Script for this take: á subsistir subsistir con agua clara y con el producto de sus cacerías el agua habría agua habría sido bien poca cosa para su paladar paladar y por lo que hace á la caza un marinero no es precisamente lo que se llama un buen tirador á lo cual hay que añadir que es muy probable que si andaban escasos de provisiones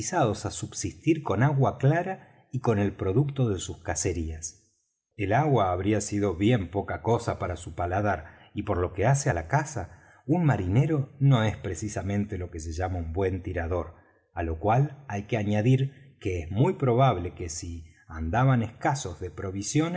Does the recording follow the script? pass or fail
fail